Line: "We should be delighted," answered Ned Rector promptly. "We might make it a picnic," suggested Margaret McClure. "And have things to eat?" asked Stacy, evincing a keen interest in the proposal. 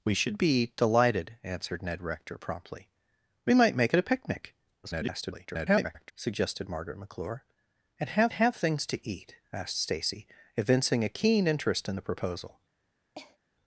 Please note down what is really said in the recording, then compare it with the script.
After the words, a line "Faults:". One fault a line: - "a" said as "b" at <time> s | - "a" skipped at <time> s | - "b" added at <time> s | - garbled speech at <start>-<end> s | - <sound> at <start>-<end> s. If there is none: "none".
"We should be delighted," answered Ned Rector promptly. "We might make it a picnic," [garbled] suggested Margaret McClure. "And have have things to eat?" asked Stacy, evincing a keen interest in the proposal.
Faults:
- garbled speech at 4.8-6.1 s
- "have" added at 8.3 s
- cough at 13.1-13.4 s